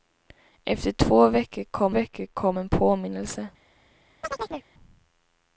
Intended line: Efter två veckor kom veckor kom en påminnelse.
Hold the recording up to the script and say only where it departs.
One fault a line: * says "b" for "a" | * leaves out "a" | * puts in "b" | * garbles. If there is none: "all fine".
all fine